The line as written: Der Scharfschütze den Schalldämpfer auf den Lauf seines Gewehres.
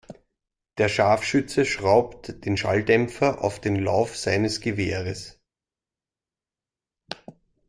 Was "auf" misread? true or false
false